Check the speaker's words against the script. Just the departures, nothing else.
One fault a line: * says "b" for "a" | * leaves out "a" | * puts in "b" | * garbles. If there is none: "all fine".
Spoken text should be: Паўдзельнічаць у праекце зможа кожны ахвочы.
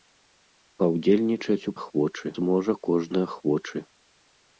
* says "ахвочы" for "праекце"